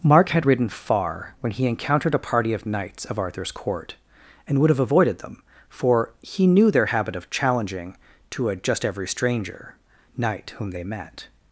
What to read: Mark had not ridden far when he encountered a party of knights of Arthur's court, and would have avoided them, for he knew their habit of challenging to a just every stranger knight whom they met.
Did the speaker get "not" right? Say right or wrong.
wrong